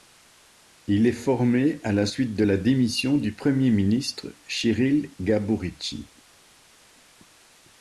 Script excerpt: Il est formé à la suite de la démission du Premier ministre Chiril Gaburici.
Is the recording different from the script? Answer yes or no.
no